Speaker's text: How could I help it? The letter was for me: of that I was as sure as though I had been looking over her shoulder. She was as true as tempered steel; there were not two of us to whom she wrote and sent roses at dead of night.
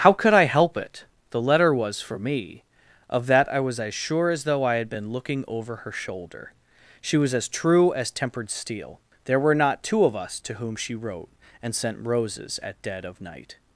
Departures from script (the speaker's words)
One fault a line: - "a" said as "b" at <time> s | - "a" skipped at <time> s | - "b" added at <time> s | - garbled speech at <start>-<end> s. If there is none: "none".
none